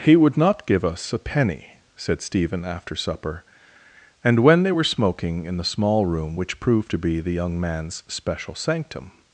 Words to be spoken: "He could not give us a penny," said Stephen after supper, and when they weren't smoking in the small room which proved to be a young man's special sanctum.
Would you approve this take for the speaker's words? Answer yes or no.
no